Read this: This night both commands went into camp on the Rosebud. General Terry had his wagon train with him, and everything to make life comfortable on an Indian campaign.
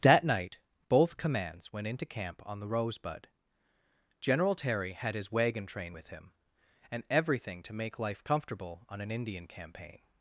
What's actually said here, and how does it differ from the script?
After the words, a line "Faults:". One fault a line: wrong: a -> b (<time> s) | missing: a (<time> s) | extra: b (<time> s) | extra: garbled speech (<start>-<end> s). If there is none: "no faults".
That night both commands went into camp on the Rosebud. General Terry had his wagon train with him, and everything to make life comfortable on an Indian campaign.
Faults:
wrong: This -> That (0.0 s)